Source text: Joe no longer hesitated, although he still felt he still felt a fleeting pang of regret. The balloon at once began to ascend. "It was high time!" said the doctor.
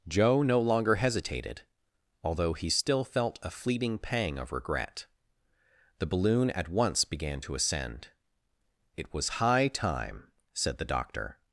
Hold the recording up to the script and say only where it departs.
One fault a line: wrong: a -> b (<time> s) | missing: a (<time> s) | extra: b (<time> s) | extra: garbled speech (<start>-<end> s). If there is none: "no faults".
missing: he still felt (3.4 s)